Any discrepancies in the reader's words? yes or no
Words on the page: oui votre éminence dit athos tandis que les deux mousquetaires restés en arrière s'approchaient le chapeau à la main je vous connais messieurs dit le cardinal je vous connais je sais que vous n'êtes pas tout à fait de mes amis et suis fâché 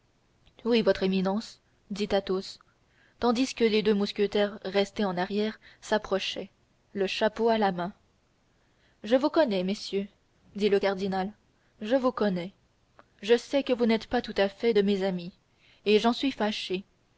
yes